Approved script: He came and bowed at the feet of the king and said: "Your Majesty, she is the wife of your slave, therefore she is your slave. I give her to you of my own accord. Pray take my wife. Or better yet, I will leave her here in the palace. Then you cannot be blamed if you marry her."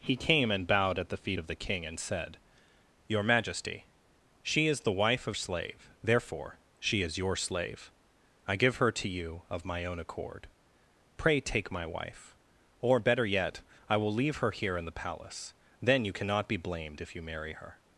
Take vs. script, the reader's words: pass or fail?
fail